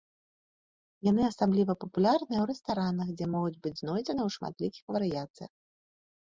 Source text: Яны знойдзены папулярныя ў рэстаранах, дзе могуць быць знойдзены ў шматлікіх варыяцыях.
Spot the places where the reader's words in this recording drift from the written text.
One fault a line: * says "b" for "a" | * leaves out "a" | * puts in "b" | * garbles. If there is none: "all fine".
* says "асабліва" for "знойдзены"